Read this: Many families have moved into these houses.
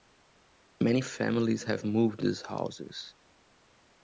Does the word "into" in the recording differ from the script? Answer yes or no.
yes